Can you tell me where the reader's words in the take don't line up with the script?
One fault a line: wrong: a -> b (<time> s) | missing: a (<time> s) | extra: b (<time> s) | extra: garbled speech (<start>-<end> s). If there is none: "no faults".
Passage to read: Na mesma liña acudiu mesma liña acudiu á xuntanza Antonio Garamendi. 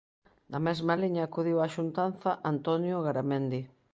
missing: mesma liña acudiu (1.6 s)